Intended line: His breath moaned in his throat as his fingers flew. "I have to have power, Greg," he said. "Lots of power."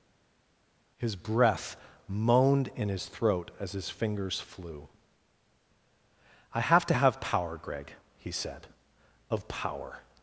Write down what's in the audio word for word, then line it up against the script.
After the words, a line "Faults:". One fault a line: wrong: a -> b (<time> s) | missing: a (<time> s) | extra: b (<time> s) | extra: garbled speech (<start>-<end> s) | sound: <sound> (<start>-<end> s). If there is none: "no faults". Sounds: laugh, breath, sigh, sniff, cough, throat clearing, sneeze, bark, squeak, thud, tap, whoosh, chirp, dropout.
His breath moaned in his throat as his fingers flew. "I have to have power, Greg," he said. "of power."
Faults:
missing: Lots (8.7 s)